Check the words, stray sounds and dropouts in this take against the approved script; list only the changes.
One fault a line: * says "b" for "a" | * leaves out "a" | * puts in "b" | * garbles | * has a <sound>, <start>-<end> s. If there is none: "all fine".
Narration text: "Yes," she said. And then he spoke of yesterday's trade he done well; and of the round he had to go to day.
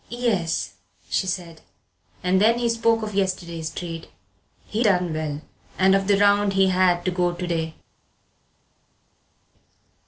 all fine